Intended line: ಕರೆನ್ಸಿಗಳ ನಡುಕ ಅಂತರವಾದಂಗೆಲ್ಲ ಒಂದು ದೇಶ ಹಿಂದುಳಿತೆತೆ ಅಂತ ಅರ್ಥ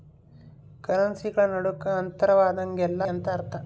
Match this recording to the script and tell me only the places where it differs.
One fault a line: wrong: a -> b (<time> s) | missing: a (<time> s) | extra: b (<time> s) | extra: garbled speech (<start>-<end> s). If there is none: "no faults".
missing: ಒಂದು ದೇಶ ಹಿಂದುಳಿತೆತೆ (3.0 s)